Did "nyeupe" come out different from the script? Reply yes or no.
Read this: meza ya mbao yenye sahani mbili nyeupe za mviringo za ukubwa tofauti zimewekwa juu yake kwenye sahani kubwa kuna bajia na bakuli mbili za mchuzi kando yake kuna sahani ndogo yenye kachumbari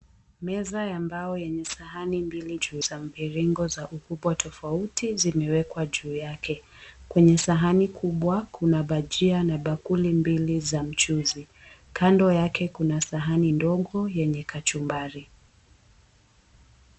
yes